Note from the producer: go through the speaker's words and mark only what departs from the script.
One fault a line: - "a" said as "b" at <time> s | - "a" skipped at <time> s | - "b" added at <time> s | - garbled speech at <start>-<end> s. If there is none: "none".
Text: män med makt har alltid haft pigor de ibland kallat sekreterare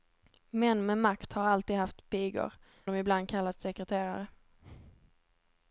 none